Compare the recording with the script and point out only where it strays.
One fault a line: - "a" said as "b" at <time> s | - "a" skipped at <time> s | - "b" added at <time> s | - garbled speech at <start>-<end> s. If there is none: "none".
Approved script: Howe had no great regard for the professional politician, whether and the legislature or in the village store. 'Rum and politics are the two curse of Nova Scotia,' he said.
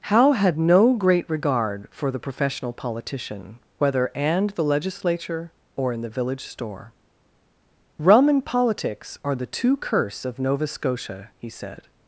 none